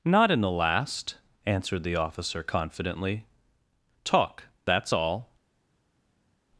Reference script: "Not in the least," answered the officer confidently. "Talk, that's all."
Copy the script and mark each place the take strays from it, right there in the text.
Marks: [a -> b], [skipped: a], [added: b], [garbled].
"Not in the [least," -> last] answered the officer confidently. "Talk, that's all."